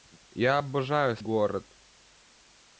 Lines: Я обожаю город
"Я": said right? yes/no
yes